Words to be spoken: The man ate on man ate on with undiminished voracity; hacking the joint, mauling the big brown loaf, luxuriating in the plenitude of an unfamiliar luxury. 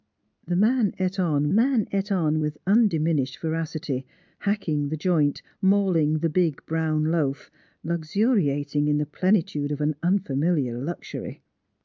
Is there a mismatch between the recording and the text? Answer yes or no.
no